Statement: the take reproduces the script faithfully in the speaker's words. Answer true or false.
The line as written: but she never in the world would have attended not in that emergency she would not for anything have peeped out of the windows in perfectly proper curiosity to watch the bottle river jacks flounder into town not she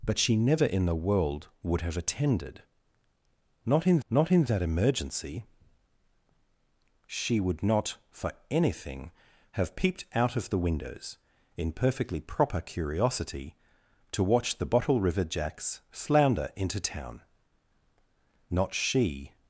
false